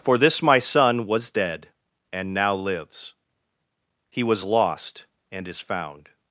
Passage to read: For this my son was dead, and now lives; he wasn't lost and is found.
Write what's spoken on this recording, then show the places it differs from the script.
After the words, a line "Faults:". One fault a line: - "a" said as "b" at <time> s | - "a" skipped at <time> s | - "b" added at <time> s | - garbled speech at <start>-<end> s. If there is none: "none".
For this my son was dead, and now lives; he was lost and is found.
Faults:
- "wasn't" said as "was" at 4.2 s